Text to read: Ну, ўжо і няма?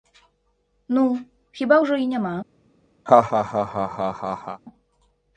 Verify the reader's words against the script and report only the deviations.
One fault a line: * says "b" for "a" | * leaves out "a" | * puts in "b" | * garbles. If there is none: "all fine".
* puts in "хіба"